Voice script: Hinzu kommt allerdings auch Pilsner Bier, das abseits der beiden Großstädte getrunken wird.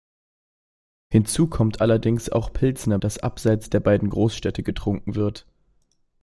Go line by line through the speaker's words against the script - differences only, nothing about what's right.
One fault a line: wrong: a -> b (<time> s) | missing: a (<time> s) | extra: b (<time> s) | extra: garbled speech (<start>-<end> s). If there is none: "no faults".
missing: Bier (3.0 s)